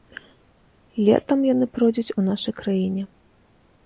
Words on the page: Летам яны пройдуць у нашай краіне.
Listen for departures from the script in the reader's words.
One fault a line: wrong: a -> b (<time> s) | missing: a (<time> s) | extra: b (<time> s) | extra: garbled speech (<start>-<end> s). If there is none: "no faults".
no faults